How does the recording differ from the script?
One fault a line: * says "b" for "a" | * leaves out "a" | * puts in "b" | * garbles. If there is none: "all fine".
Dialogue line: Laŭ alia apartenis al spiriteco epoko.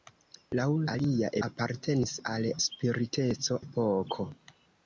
all fine